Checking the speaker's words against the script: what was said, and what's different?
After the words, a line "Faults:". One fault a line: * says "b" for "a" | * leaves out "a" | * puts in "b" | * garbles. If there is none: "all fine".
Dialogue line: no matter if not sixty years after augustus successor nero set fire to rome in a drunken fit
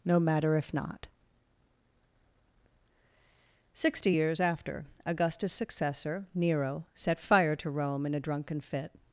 no matter if not sixty years after augustus successor nero set fire to rome in a drunken fit
Faults:
all fine